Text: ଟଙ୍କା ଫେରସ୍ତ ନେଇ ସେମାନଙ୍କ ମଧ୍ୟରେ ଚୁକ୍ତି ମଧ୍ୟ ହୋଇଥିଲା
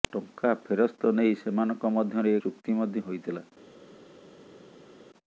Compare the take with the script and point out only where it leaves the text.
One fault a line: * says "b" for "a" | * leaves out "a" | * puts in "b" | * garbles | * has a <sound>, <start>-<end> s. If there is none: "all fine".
all fine